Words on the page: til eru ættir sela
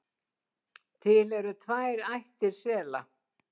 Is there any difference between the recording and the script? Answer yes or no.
yes